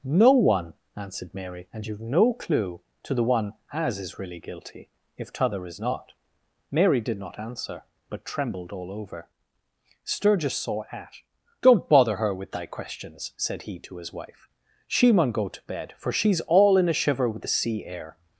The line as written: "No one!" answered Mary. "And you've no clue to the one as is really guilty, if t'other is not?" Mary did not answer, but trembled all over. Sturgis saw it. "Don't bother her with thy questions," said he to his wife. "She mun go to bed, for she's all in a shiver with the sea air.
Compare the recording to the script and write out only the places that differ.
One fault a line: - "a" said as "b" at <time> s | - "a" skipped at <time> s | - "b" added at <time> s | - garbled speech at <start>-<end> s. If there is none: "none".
- "it" said as "at" at 10.9 s